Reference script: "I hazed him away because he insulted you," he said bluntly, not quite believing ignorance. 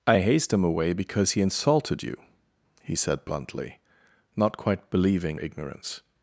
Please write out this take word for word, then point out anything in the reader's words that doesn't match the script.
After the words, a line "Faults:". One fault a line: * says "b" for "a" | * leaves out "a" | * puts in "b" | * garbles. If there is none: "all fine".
"I hazed him away because he insulted you," he said bluntly, not quite believing ignorance.
Faults:
all fine